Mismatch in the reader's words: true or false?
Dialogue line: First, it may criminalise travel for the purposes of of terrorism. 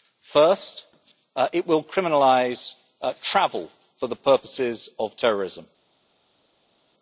true